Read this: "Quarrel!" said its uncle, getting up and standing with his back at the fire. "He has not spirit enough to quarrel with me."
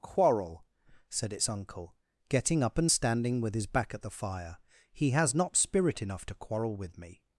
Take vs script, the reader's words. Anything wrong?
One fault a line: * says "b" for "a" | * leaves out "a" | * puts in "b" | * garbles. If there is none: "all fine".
all fine